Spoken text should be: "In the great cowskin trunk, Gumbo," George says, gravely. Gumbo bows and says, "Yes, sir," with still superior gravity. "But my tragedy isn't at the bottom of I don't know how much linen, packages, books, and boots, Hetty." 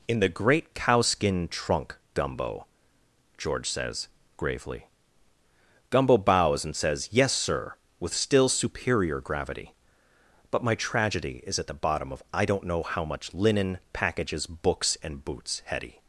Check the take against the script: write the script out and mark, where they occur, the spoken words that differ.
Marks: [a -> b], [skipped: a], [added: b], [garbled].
"In the great cowskin trunk, Gumbo," George says, gravely. Gumbo bows and says, "Yes, sir," with still superior gravity. "But my tragedy [isn't -> is] at the bottom of I don't know how much linen, packages, books, and boots, Hetty."